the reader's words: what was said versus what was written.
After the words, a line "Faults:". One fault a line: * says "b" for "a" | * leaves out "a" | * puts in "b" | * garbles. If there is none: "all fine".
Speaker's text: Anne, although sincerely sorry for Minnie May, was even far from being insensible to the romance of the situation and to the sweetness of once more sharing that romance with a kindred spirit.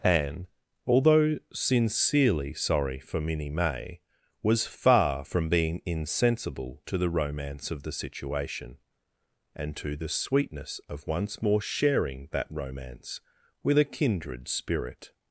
Anne, although sincerely sorry for Minnie May, was far from being insensible to the romance of the situation and to the sweetness of once more sharing that romance with a kindred spirit.
Faults:
* leaves out "even"